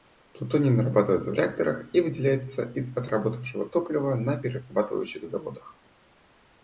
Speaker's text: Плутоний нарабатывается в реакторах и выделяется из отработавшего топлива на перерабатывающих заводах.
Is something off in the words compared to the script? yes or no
no